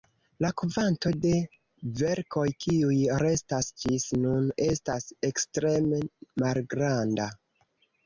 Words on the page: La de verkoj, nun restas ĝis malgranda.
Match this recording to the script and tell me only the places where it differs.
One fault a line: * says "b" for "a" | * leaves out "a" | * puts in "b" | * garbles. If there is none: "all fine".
* puts in "kvanto"
* says "kiuj" for "nun"
* puts in "nun estas ekstreme"